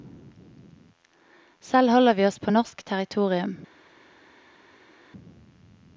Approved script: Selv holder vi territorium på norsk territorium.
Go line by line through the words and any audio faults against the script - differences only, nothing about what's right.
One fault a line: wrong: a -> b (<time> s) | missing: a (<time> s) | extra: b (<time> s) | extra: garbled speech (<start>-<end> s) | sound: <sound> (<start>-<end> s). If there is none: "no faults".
wrong: territorium -> oss (2.2 s)